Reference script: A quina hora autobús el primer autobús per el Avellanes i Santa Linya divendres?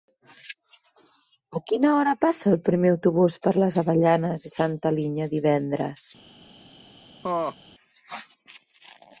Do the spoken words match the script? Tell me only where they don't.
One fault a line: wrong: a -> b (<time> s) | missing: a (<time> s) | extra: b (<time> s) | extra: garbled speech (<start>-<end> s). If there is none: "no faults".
wrong: autobús -> passa (2.2 s)
wrong: el -> les (3.6 s)